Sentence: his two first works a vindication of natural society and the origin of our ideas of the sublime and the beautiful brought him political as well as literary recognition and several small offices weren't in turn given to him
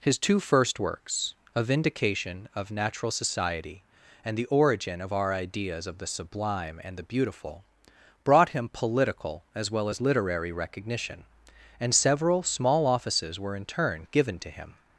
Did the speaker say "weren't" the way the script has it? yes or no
no